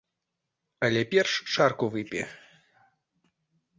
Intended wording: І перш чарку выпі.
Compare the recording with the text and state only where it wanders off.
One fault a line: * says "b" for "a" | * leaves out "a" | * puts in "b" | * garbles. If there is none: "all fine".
* says "Але" for "І"